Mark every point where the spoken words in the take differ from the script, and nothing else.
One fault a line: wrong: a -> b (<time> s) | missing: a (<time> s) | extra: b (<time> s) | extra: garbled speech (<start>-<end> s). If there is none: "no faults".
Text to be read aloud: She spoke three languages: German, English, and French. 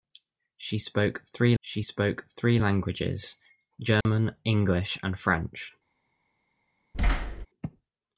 extra: she spoke three (1.6 s)